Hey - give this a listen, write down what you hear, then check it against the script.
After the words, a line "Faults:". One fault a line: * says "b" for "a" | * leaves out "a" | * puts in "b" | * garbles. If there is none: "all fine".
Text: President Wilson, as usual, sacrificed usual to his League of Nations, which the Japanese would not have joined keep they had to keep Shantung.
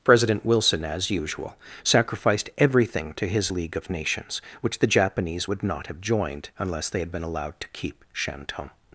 President Wilson, as usual, sacrificed everything to his League of Nations, which the Japanese would not have joined unless they had been allowed to keep Shantung.
Faults:
* says "everything" for "usual"
* says "unless" for "keep"
* puts in "been allowed"